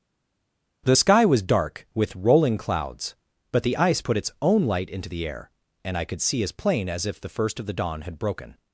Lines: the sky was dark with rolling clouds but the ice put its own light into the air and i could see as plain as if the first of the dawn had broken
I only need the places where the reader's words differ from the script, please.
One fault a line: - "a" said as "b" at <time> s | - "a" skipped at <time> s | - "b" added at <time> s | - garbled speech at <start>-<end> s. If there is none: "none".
none